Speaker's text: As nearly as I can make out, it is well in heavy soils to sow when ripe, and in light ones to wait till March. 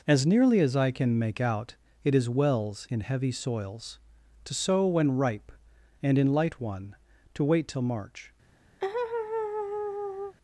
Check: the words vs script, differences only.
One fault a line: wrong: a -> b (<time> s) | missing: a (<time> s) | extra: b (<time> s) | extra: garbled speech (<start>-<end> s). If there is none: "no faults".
wrong: well -> wells (2.3 s)
wrong: ones -> one (6.6 s)